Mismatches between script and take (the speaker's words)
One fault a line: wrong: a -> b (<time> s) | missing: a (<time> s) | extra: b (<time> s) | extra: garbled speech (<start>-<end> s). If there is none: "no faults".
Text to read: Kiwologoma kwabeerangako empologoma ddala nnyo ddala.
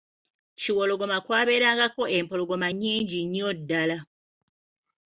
wrong: ddala -> nnyingi (2.7 s)